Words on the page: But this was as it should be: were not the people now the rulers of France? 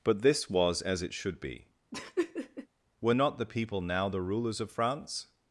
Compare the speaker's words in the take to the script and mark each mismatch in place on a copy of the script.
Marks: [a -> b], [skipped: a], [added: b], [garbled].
But this was as it should be: were not the people now the rulers of France?